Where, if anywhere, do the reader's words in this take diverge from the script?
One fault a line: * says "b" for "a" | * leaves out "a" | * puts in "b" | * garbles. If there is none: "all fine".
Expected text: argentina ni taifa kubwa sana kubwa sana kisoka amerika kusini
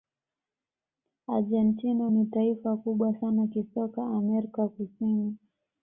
* leaves out "kubwa sana"